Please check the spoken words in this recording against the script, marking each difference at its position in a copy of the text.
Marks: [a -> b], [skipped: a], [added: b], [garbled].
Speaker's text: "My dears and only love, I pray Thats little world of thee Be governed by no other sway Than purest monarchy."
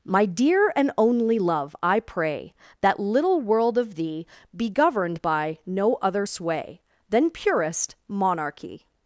"My [dears -> dear] and only love, I pray [Thats -> That] little world of thee Be governed by no other sway Than purest monarchy."